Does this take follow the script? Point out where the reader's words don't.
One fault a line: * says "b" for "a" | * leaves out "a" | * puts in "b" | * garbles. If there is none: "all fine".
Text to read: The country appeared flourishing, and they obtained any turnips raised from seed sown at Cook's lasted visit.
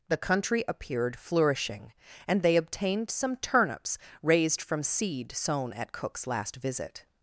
* says "some" for "any"
* says "last" for "lasted"